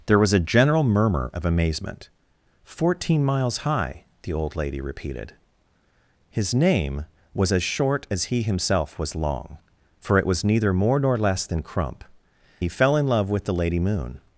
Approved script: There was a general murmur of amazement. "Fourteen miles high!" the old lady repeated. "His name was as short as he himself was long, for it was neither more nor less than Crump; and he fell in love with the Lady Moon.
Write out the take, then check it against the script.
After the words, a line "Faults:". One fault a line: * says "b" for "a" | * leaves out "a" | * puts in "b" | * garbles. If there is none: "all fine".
There was a general murmur of amazement. "Fourteen miles high!" the old lady repeated. "His name was as short as he himself was long, for it was neither more nor less than Crump; he fell in love with the Lady Moon.
Faults:
* leaves out "and"